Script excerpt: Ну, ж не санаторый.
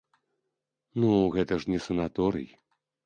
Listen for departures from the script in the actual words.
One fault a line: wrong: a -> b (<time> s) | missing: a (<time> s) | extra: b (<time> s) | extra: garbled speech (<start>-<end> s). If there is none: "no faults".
extra: гэта (1.3 s)